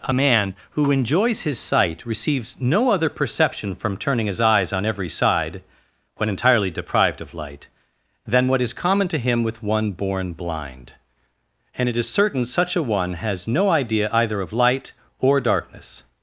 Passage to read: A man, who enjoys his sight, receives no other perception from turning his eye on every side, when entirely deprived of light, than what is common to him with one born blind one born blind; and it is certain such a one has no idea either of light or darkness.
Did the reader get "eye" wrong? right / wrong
wrong